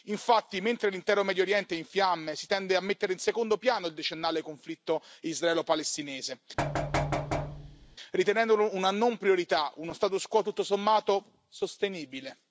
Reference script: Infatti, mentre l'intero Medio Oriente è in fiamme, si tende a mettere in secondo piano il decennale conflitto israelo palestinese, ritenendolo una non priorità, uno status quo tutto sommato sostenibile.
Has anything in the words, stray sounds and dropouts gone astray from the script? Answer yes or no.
yes